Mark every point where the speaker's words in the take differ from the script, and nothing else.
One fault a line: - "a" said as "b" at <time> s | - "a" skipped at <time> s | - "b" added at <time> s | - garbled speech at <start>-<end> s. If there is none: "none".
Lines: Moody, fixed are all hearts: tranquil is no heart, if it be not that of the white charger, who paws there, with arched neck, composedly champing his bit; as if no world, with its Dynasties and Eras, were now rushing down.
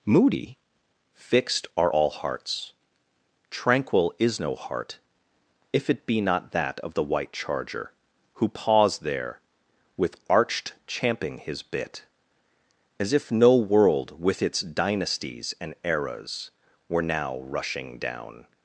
- "neck composedly" skipped at 10.7 s